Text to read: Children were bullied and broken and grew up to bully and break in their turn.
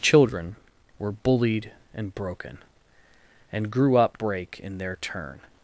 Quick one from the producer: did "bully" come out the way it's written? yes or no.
no